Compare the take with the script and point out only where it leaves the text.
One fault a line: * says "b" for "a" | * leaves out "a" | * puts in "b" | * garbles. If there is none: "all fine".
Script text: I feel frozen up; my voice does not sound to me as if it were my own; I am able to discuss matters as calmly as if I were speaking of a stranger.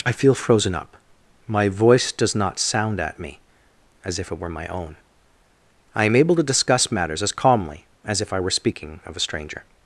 * says "at" for "to"